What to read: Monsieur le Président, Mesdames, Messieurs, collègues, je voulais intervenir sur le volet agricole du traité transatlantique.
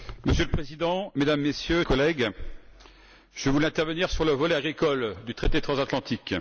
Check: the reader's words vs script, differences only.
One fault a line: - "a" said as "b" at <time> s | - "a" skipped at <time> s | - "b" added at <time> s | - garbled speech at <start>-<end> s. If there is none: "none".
none